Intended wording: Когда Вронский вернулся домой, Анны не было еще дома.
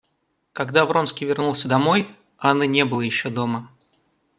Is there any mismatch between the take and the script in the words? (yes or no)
no